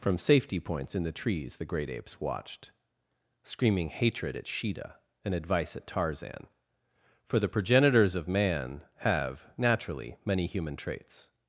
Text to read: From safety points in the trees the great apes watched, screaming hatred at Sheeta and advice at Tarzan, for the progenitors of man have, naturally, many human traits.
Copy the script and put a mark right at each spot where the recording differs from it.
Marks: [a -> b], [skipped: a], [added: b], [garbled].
From safety points in the trees the great apes watched, screaming hatred at Sheeta and advice at Tarzan, for the progenitors of man have, naturally, many human traits.